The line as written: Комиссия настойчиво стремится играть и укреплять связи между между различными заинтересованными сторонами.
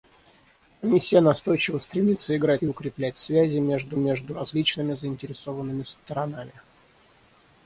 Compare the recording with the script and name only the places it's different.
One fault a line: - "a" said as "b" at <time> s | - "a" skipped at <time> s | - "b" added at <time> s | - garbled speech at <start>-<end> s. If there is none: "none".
none